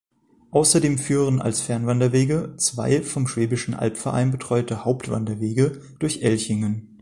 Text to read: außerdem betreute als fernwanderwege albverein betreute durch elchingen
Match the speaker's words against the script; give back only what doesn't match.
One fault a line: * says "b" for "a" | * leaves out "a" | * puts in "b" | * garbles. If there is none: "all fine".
* says "führen" for "betreute"
* puts in "zwei vom schwäbischen"
* puts in "hauptwanderwege"